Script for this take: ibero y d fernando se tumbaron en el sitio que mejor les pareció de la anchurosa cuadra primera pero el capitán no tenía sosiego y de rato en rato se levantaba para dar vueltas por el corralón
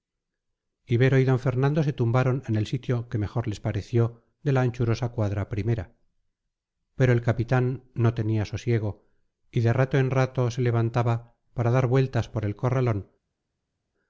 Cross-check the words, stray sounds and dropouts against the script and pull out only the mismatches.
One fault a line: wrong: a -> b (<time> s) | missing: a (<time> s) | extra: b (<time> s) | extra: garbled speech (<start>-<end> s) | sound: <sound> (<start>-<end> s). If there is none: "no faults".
no faults